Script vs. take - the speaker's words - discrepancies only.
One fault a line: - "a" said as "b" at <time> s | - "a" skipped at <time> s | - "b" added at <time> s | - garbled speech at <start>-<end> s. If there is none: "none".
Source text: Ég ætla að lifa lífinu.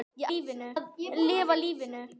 - "ætla" said as "lífinu" at 0.3 s